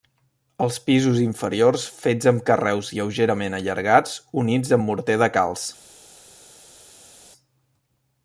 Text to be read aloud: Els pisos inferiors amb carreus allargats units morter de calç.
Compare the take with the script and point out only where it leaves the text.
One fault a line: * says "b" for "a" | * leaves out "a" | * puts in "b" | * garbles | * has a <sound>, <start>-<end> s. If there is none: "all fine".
* puts in "fets"
* puts in "lleugerament"
* puts in "amb"